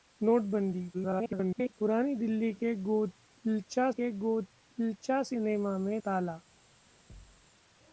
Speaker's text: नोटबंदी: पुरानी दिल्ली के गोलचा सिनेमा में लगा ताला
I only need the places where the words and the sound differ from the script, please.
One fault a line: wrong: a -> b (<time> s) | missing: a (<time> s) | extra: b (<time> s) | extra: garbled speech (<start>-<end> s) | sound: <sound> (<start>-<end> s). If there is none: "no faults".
extra: garbled speech (0.9-1.7 s)
extra: के गोलचा (3.9 s)
missing: लगा (6.0 s)
sound: thud (7.1-7.5 s)